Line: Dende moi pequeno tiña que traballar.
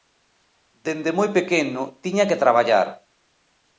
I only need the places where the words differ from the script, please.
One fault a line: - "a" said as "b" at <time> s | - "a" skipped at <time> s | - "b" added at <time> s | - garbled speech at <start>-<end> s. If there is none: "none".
none